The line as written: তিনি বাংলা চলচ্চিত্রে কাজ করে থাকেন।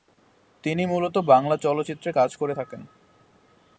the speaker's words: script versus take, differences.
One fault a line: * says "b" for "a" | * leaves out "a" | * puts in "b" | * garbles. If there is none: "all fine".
* puts in "মূলত"